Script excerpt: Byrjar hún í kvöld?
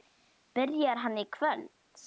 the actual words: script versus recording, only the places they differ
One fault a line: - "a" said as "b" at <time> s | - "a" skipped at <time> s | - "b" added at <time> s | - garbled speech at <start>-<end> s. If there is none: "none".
- "hún" said as "hann" at 1.0 s